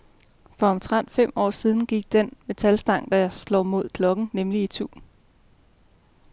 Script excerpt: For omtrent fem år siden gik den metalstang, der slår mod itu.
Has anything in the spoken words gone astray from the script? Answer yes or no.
yes